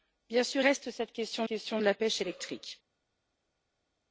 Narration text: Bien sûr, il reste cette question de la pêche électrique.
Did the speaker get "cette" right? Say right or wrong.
right